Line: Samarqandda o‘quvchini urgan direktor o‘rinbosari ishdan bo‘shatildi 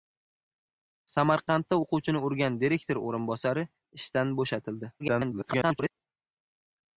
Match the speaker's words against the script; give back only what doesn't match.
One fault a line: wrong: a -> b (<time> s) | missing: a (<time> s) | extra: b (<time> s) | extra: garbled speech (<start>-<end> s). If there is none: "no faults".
extra: garbled speech (5.0-5.9 s)